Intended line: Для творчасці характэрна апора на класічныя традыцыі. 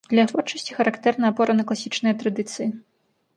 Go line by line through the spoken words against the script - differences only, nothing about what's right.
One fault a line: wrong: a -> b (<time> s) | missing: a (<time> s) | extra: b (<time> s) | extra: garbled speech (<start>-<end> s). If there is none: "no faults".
no faults